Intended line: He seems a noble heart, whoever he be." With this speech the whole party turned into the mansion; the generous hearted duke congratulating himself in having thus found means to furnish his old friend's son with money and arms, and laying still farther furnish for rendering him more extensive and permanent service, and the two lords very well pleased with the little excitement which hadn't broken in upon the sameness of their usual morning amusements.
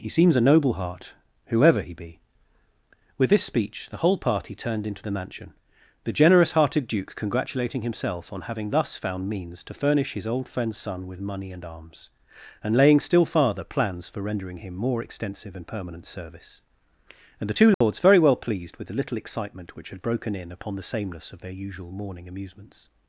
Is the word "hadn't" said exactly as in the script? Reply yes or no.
no